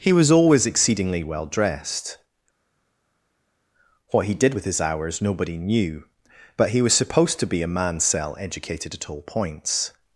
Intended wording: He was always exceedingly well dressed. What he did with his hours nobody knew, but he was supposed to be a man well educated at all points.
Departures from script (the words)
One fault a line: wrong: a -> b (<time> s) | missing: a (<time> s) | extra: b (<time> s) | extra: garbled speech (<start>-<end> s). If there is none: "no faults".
wrong: well -> cell (8.0 s)